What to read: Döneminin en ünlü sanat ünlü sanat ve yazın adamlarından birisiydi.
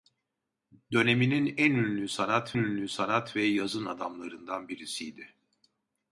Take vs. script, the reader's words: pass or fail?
pass